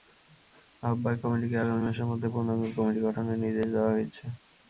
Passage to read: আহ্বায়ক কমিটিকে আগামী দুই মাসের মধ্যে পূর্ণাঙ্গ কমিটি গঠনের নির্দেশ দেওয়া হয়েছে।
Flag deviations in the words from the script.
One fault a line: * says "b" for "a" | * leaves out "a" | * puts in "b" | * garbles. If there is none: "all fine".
* leaves out "দুই"